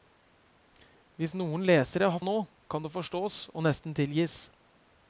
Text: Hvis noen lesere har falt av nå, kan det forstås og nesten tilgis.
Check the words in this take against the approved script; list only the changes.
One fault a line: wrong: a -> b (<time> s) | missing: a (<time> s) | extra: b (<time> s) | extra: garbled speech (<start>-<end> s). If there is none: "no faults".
missing: falt (2.2 s)